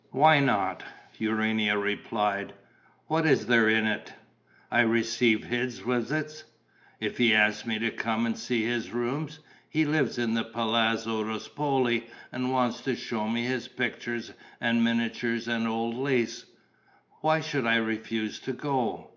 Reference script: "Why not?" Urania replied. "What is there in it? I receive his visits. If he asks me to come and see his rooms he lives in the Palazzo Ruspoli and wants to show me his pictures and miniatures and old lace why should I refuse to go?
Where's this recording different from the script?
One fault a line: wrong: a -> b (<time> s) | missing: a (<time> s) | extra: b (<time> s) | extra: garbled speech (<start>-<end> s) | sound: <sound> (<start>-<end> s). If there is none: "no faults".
no faults